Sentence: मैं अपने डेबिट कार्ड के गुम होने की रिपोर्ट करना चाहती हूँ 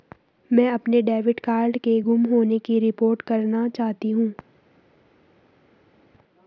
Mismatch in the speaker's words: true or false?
false